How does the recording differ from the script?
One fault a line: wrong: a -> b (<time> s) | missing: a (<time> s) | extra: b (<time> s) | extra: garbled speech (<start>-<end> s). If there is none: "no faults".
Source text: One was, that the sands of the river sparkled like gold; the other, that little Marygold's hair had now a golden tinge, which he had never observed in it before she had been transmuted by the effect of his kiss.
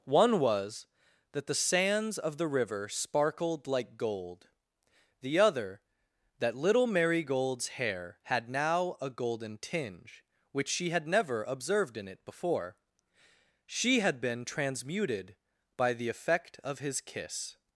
wrong: he -> she (10.7 s)